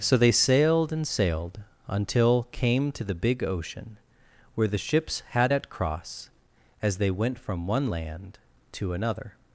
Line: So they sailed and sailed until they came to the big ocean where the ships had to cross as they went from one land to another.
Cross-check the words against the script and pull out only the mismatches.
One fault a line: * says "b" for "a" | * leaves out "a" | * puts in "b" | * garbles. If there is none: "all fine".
* leaves out "they"
* says "at" for "to"